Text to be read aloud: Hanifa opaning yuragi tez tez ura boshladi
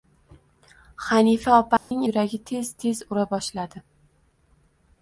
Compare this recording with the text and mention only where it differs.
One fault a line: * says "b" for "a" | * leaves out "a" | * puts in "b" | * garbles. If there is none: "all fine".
all fine